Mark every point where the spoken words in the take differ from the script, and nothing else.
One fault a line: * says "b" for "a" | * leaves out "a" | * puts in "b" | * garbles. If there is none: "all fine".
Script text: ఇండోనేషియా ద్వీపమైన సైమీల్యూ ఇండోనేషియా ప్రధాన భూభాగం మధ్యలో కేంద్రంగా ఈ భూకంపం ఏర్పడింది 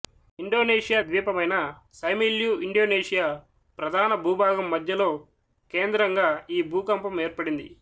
all fine